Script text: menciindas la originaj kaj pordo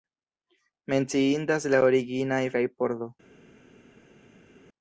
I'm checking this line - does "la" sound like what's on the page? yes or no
yes